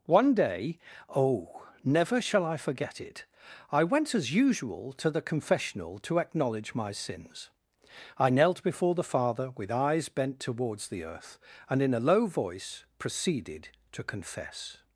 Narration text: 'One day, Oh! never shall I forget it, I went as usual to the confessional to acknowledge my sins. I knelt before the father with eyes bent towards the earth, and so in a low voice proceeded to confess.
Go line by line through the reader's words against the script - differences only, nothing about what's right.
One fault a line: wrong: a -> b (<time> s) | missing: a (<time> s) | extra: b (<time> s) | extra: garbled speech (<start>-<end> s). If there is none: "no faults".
missing: so (11.8 s)